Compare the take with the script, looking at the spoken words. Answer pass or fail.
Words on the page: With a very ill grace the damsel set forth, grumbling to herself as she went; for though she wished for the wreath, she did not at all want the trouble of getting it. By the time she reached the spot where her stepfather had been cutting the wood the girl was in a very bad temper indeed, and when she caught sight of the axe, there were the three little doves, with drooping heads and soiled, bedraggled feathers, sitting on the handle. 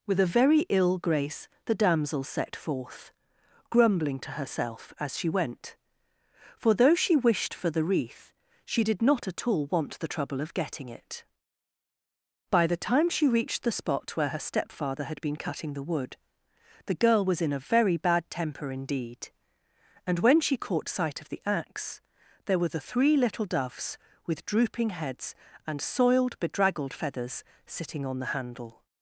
pass